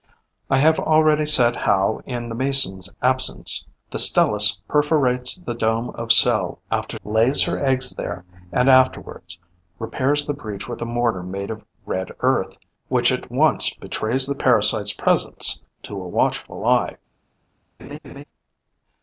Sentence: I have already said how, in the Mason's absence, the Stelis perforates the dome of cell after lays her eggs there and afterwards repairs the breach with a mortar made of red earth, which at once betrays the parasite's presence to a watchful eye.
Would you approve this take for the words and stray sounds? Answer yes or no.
no